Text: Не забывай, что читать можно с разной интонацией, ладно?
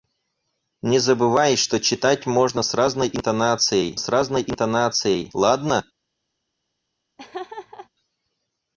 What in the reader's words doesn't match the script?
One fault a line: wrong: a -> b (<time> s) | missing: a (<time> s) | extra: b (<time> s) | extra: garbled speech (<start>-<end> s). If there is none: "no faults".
extra: с разной интонацией (4.0 s)